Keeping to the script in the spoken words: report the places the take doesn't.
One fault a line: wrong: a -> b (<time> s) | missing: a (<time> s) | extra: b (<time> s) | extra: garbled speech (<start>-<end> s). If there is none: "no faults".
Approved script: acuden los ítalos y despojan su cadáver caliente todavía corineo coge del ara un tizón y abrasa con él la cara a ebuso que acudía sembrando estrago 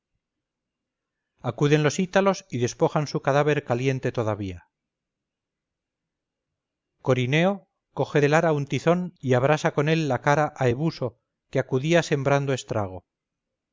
no faults